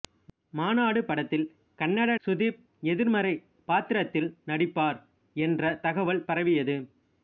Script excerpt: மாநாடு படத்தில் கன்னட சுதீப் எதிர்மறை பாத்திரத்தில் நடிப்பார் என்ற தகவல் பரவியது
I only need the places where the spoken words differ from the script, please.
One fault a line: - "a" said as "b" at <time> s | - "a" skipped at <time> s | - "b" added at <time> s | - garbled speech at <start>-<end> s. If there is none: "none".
none